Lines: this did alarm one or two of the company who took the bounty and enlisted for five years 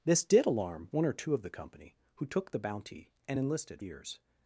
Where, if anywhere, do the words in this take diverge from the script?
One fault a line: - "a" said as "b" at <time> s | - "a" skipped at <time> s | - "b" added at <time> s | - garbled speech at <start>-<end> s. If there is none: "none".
- "for five" skipped at 3.8 s